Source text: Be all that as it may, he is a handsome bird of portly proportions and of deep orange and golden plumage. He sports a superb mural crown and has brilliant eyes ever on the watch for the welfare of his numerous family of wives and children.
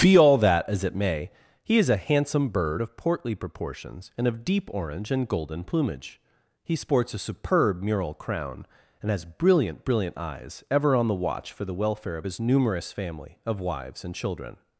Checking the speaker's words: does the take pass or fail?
fail